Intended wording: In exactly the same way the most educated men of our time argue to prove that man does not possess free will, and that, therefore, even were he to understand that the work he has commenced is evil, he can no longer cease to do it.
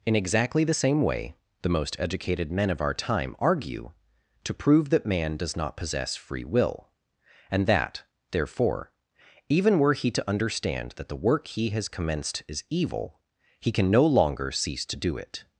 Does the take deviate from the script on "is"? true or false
false